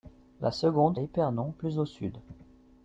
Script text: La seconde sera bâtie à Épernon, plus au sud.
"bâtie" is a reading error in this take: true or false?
true